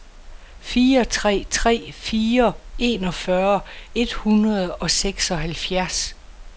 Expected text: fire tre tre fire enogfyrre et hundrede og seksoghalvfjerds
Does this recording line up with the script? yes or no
yes